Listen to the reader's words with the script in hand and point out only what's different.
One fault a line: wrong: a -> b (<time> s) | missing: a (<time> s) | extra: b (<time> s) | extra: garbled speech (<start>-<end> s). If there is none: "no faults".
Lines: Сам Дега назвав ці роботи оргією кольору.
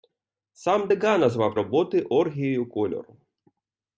missing: ці (1.5 s)